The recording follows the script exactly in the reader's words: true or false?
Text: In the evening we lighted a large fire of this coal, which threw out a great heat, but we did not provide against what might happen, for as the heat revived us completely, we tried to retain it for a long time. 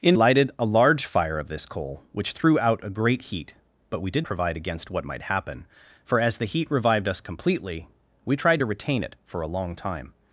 false